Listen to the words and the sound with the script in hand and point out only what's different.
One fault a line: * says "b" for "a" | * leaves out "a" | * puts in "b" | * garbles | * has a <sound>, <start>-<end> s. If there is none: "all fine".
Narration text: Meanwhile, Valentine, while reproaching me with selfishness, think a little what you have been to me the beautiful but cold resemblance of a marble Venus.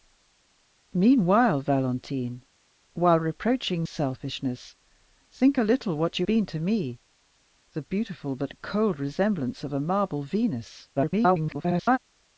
* leaves out "me with"
* leaves out "have"
* garbles